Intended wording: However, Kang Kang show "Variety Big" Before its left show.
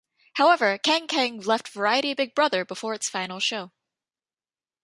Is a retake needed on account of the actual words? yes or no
yes